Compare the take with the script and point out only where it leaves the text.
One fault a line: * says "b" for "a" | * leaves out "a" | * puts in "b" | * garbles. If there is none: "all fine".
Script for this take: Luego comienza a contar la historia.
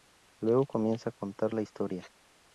all fine